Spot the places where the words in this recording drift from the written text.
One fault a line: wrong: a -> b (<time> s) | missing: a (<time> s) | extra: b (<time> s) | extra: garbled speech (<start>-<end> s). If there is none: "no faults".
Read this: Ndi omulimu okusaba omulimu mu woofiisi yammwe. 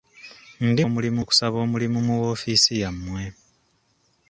no faults